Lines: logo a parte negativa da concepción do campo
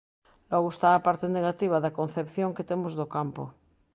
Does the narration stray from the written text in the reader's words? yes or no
yes